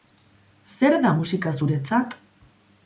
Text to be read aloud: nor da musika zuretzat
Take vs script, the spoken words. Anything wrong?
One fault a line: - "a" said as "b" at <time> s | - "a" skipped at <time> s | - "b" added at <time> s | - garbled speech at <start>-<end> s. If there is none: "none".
- "nor" said as "zer" at 0.8 s